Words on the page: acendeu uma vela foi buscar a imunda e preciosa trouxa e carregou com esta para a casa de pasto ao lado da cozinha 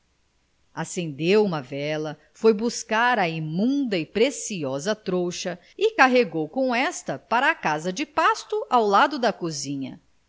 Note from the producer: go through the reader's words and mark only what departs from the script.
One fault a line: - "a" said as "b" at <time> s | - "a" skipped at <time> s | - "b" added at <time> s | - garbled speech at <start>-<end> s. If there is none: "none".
none